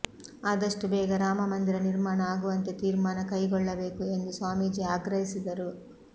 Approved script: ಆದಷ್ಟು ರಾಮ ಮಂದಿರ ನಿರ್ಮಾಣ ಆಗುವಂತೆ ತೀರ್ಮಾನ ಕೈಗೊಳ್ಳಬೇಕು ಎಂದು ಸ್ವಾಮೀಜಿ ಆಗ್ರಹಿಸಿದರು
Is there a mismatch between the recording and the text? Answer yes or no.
yes